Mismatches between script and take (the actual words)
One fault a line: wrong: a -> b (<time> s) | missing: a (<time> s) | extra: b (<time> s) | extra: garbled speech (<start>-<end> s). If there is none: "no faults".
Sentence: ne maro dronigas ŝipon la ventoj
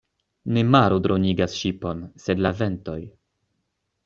extra: sed (2.3 s)